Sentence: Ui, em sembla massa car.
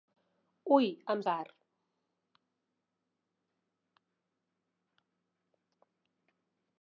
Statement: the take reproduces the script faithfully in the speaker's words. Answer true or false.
false